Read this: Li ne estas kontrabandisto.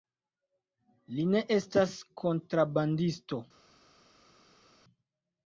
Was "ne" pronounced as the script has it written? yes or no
yes